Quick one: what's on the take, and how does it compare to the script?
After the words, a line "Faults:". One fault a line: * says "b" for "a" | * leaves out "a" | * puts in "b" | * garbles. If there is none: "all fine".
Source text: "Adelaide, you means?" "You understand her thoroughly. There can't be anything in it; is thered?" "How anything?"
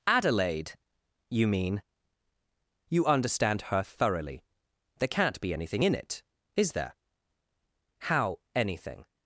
"Adelaide, you mean?" "You understand her thoroughly. There can't be anything in it; is there?" "How anything?"
Faults:
* says "mean" for "means"
* says "there" for "thered"